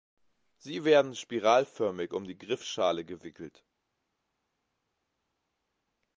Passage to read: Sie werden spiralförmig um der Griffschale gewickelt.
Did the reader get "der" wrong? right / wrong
wrong